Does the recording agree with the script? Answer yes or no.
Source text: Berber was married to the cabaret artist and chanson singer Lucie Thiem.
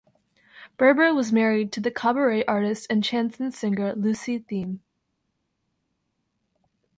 yes